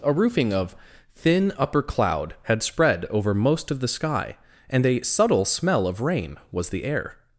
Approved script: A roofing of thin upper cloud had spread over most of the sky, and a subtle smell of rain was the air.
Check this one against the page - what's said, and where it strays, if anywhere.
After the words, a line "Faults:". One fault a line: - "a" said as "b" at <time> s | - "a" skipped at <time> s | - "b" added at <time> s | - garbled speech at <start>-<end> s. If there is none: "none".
A roofing of thin upper cloud had spread over most of the sky, and a subtle smell of rain was the air.
Faults:
none